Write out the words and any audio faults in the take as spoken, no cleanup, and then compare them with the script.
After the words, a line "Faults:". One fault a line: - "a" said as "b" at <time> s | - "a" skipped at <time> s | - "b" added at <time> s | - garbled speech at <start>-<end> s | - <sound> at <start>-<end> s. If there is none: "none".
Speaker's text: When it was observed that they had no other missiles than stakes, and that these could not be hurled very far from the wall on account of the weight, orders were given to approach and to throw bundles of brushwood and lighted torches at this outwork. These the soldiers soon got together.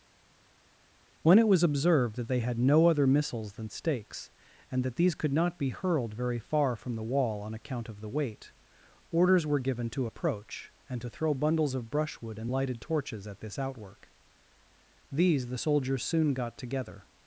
When it was observed that they had no other missiles than stakes, and that these could not be hurled very far from the wall on account of the weight, orders were given to approach and to throw bundles of brushwood and lighted torches at this outwork. These the soldiers soon got together.
Faults:
none